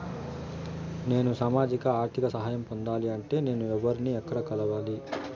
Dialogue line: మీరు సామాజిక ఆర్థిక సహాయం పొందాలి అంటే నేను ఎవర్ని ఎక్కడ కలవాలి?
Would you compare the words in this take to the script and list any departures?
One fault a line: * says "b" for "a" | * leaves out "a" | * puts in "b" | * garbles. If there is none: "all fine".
* says "నేను" for "మీరు"